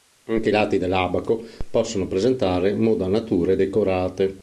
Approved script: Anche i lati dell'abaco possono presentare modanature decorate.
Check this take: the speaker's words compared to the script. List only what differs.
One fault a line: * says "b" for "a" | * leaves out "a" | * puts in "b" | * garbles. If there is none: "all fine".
all fine